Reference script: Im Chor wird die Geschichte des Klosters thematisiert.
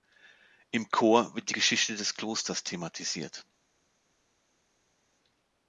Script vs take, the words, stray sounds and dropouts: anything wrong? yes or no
no